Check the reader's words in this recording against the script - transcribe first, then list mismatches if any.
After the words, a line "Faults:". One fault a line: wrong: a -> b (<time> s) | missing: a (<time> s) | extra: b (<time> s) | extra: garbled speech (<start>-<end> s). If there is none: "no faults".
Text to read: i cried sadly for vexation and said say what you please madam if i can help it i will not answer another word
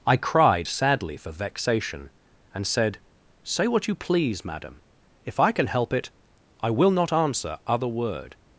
i cried sadly for vexation and said say what you please madam if i can help it i will not answer other word
Faults:
wrong: another -> other (7.7 s)